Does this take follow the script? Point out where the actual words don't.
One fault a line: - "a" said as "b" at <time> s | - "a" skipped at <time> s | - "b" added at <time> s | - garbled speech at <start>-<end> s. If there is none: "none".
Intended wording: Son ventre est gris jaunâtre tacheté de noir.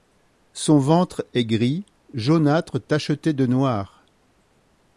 none